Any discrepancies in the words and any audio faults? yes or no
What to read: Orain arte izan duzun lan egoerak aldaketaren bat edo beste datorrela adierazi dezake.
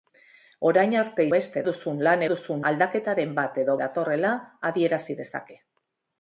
yes